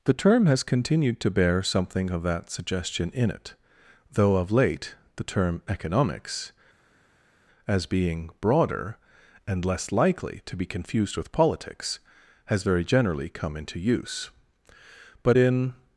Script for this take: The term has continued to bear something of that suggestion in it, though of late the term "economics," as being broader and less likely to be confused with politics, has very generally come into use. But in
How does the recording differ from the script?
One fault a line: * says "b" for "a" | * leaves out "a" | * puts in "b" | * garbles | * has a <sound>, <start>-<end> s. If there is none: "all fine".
all fine